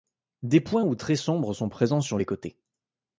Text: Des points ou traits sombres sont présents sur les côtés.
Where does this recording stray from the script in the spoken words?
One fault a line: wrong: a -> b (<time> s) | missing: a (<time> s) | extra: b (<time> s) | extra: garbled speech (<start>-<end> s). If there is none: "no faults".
no faults